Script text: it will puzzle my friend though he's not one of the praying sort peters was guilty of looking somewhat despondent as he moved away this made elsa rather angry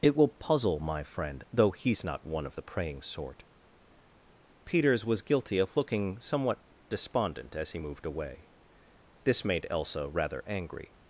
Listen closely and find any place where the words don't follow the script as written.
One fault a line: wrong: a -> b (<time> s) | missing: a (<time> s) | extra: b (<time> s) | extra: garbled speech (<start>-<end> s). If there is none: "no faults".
no faults